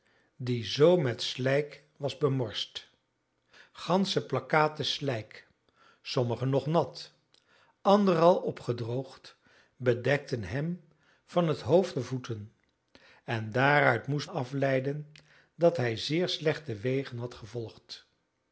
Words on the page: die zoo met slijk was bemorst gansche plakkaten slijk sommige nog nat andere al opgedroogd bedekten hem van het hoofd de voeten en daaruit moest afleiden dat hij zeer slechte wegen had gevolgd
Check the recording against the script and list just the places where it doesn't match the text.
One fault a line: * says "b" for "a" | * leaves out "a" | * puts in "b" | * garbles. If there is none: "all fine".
all fine